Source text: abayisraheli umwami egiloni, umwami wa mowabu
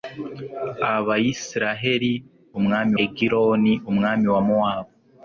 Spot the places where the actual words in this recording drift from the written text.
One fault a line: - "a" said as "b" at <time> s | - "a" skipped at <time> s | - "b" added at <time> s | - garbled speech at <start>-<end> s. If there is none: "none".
none